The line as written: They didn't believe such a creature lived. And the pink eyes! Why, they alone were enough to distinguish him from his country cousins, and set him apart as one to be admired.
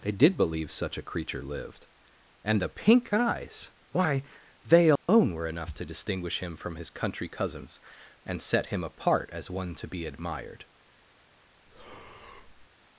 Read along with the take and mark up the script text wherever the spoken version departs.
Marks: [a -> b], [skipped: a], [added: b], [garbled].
They [didn't -> did] believe such a creature lived. And the pink eyes! Why, they alone were enough to distinguish him from his country cousins, and set him apart as one to be admired.